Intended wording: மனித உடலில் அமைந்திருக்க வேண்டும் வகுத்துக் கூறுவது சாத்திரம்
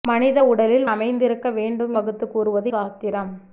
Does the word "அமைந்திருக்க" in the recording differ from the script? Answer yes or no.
no